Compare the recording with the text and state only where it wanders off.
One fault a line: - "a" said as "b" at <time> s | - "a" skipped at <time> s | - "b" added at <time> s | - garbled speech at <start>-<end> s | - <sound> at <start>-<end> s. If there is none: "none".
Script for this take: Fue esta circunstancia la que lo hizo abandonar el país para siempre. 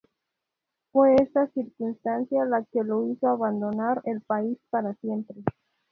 none